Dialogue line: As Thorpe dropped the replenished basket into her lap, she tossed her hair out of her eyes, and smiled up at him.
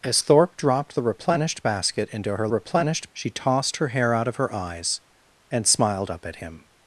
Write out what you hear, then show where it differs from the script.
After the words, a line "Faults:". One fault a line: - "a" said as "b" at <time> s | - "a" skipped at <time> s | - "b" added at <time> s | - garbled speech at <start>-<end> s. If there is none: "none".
As Thorpe dropped the replenished basket into her replenished, she tossed her hair out of her eyes, and smiled up at him.
Faults:
- "lap" said as "replenished" at 2.5 s